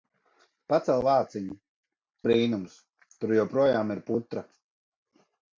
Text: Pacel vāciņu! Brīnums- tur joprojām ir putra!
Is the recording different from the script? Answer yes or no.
no